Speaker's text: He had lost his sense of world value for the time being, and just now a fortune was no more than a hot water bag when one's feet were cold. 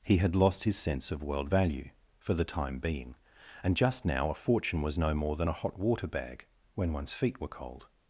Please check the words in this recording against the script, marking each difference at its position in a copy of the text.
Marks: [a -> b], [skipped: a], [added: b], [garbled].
He had lost his sense of world value for the time being, and just now a fortune was no more than a hot water bag when one's feet were cold.